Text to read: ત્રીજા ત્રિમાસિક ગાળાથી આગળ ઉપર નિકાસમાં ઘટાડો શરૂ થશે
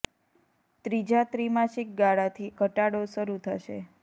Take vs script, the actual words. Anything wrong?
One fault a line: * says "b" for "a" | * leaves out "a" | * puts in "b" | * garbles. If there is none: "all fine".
* leaves out "આગળ ઉપર નિકાસમાં"